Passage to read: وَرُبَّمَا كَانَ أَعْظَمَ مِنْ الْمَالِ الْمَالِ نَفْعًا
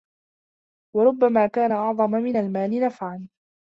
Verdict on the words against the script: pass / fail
fail